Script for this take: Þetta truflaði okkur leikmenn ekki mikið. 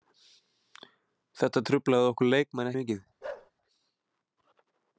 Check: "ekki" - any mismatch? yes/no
yes